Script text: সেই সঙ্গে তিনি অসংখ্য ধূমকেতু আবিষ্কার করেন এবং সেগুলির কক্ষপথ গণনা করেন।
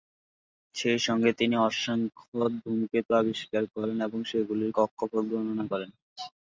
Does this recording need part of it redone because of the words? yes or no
no